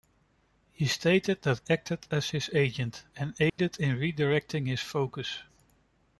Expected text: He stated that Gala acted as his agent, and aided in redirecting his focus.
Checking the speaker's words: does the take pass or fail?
fail